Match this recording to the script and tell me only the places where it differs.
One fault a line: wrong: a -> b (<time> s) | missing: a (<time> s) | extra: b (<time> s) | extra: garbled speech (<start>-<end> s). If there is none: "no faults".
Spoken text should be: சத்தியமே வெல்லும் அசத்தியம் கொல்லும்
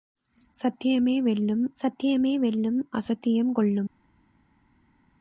extra: சத்தியமே வெல்லும் (1.8 s)